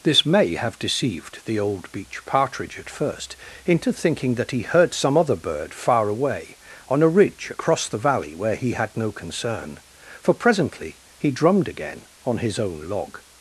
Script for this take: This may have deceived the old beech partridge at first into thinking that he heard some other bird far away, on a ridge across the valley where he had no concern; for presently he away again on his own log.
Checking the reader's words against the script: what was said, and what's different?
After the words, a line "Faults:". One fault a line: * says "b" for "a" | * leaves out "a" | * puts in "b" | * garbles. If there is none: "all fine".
This may have deceived the old beech partridge at first into thinking that he heard some other bird far away, on a ridge across the valley where he had no concern; for presently he drummed again on his own log.
Faults:
* says "drummed" for "away"